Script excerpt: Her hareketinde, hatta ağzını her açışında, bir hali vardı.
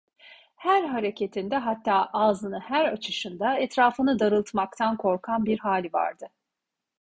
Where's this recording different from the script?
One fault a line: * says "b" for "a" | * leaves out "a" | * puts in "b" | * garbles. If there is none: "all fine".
* puts in "etrafını darıltmaktan korkan"